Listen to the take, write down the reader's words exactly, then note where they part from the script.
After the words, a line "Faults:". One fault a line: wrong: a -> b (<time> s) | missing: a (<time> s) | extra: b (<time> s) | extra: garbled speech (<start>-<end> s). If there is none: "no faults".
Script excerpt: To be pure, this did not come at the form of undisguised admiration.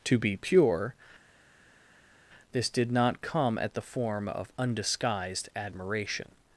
To be pure, this did not come at the form of undisguised admiration.
Faults:
no faults